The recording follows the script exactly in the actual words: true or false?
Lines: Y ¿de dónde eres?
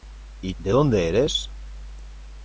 true